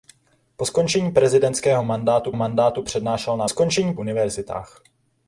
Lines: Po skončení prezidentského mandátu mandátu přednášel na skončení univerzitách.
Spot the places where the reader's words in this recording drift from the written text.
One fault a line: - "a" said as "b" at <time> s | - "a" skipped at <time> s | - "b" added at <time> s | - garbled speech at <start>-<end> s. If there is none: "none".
none